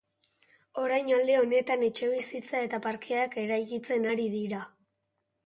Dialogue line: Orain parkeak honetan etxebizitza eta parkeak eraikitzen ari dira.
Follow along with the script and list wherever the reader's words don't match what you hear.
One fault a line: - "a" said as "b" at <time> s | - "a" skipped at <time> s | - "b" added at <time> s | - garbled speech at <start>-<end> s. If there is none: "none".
- "parkeak" said as "alde" at 1.2 s